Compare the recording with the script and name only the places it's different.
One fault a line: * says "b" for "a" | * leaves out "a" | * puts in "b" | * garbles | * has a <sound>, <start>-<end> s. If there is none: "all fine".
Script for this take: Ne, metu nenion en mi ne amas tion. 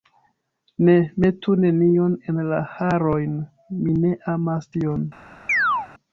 * puts in "la harojn"
* has a chirp, 5.5-5.9 s